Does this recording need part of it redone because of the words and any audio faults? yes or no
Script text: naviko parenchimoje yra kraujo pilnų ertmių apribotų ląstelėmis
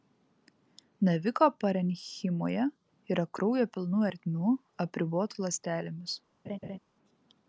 yes